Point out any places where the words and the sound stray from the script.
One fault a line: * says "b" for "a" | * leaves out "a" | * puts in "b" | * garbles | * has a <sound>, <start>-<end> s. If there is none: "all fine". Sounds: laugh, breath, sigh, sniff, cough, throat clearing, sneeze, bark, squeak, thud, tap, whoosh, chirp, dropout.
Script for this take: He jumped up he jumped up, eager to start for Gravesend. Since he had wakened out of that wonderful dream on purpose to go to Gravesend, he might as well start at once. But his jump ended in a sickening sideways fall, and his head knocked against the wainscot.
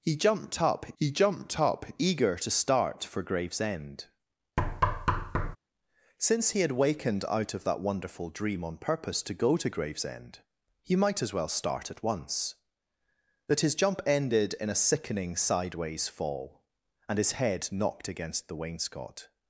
* has a thud, 4.6-5.6 s